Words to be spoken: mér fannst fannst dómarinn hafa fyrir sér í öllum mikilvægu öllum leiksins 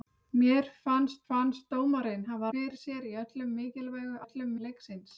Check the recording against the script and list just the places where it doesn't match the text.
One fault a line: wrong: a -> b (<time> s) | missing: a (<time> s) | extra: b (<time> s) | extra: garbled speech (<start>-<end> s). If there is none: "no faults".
no faults